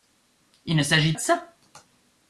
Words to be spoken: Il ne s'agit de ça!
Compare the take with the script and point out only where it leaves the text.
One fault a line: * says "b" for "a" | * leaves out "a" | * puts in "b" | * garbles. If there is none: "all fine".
all fine